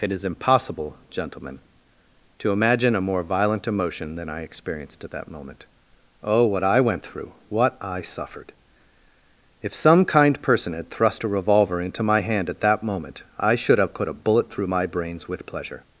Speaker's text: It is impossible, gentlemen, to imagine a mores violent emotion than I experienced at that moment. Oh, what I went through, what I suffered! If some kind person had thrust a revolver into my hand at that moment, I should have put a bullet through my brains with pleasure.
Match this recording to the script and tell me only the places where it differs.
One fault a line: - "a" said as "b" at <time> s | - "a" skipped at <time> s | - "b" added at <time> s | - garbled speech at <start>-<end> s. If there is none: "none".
- "mores" said as "more" at 3.0 s